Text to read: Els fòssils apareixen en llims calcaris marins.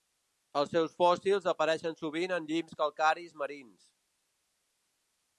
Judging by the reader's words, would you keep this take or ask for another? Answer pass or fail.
fail